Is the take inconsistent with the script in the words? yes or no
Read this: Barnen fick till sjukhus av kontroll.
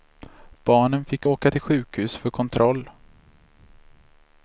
yes